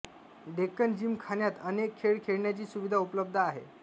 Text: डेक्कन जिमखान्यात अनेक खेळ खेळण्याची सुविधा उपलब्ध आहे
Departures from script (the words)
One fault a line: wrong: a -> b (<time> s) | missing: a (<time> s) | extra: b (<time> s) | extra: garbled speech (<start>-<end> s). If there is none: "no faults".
no faults